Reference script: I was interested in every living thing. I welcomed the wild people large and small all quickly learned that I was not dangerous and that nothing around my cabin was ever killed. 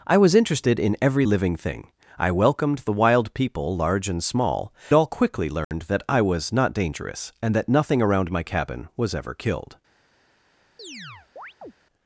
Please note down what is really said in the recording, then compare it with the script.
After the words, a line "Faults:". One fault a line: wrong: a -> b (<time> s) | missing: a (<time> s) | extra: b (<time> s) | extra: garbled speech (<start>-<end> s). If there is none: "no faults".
I was interested in every living thing. I welcomed the wild people large and small all quickly learned that I was not dangerous and that nothing around my cabin was ever killed.
Faults:
no faults